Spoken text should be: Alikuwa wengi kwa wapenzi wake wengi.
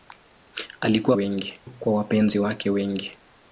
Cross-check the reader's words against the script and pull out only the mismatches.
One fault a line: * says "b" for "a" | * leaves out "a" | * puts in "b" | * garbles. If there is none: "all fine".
all fine